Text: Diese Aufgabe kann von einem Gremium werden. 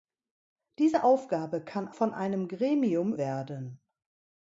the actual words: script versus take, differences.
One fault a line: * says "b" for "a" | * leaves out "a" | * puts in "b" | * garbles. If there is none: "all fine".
all fine